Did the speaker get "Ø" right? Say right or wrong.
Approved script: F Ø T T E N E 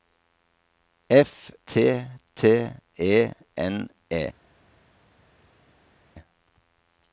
wrong